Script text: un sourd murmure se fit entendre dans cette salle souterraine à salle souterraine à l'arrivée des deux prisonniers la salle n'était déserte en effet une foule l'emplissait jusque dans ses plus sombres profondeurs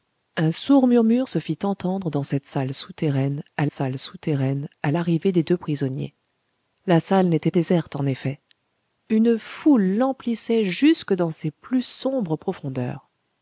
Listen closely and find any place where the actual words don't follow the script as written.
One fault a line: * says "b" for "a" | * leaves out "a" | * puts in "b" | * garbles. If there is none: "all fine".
all fine